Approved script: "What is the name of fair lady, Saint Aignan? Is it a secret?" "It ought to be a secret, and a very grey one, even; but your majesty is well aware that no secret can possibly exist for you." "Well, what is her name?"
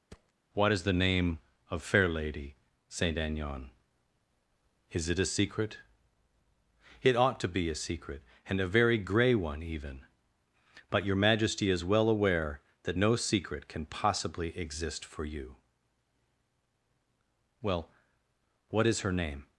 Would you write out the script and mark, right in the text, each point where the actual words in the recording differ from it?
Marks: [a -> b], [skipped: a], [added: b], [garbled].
"What is the name of fair lady, Saint Aignan? Is it a secret?" "It ought to be a secret, and a very grey one, even; but your majesty is well aware that no secret can possibly exist for you." "Well, what is her name?"